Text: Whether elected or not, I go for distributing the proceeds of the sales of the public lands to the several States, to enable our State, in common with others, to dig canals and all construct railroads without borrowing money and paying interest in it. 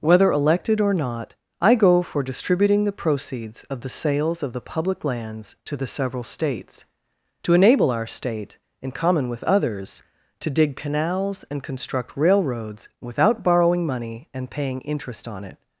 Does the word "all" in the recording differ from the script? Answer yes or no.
yes